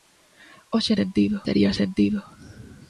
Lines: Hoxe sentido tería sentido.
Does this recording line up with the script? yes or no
yes